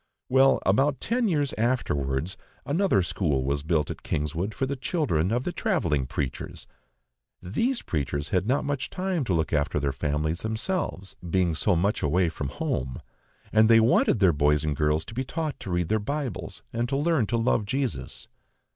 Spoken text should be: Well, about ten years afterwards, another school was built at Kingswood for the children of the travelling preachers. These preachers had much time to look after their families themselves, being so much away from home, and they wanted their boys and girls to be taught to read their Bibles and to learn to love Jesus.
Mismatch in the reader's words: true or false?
true